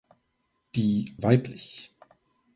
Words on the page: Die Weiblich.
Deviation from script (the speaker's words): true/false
false